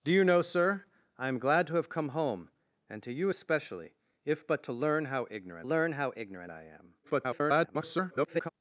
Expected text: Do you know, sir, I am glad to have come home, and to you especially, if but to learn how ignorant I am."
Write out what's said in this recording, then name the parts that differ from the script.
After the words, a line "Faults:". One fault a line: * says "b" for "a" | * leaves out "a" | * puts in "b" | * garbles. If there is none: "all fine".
Do you know, sir, I am glad to have come home, and to you especially, if but to learn how ignorant learn how ignorant I am." [garbled]
Faults:
* puts in "learn how ignorant"
* garbles